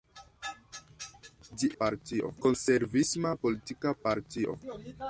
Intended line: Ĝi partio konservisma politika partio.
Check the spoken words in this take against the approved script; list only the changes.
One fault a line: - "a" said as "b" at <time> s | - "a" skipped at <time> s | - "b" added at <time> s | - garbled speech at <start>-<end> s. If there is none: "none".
none